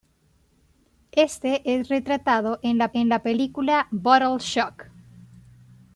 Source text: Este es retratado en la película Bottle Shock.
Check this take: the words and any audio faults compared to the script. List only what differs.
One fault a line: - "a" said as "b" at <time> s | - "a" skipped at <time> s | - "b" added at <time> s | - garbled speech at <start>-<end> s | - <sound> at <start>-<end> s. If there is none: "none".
- "en la" added at 2.9 s